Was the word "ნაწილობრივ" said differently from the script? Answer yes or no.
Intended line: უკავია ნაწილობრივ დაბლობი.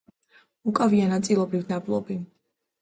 no